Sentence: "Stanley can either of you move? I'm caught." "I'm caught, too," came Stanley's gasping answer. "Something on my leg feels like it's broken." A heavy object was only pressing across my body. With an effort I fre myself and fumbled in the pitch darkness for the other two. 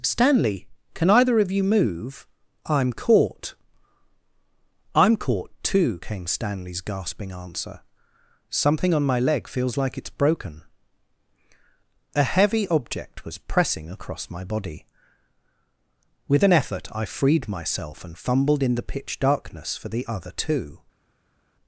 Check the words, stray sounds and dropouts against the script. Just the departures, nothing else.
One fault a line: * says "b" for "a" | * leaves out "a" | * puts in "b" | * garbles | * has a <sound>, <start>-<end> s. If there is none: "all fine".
* leaves out "only"
* says "freed" for "fre"